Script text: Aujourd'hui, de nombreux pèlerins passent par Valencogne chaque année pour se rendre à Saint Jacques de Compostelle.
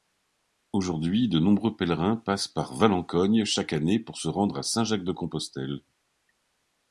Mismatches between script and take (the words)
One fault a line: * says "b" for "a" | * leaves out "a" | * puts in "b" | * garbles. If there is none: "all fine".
all fine